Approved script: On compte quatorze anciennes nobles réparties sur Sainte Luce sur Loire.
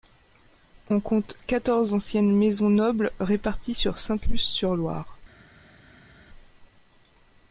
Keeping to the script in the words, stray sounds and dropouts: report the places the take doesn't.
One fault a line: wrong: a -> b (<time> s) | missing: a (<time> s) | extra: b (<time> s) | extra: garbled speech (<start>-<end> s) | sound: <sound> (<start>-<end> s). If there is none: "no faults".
extra: maisons (2.4 s)